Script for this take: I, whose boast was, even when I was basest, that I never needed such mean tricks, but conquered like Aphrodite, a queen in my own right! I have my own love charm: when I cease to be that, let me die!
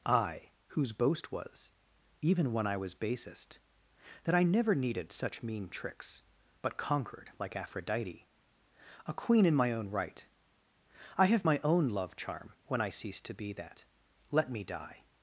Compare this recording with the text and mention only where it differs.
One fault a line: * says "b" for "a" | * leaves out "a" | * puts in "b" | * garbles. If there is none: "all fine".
all fine